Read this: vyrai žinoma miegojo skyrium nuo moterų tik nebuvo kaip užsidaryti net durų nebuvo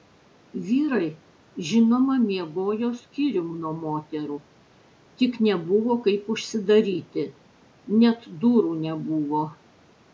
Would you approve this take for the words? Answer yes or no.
yes